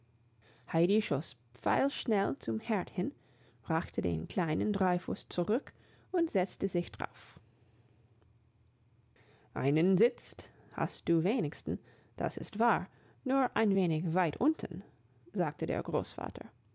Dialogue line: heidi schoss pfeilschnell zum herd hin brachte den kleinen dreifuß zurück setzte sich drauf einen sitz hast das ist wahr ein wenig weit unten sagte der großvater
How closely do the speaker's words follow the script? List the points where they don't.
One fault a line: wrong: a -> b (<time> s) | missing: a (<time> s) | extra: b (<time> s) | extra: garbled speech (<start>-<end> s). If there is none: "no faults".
extra: und (6.1 s)
extra: du wenigstens (11.1 s)
extra: nur (13.2 s)